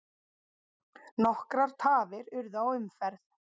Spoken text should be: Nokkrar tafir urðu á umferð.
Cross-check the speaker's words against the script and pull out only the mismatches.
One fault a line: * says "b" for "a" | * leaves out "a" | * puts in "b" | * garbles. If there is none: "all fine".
all fine